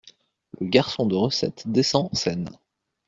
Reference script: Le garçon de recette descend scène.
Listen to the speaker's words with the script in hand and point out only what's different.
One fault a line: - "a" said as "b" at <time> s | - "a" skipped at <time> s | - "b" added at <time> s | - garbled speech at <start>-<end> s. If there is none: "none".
none